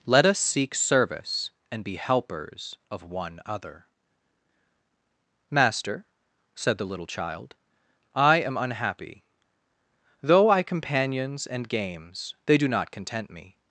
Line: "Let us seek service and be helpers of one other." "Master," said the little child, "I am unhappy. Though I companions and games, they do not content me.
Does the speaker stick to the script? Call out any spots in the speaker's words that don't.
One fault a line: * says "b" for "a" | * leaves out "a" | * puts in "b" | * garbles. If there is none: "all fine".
all fine